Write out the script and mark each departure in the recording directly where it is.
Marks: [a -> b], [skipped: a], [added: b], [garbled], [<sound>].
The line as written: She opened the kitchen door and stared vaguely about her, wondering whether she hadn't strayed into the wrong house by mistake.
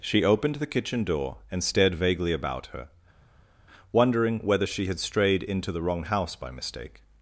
She opened the kitchen door and stared vaguely about her, wondering whether she [hadn't -> had] strayed into the wrong house by mistake.